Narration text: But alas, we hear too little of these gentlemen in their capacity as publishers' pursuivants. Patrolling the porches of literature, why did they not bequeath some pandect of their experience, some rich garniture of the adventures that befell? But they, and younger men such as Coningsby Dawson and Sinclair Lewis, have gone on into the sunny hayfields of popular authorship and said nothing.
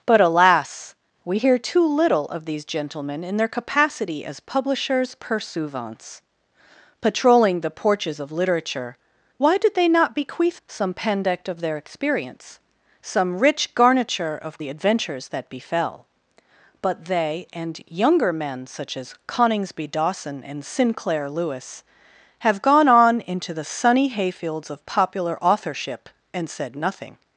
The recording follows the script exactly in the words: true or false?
true